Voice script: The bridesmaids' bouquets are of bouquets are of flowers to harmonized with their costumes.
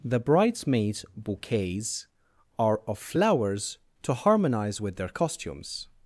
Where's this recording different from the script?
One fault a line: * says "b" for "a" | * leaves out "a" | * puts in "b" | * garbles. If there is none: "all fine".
* leaves out "bouquets are of"
* says "harmonize" for "harmonized"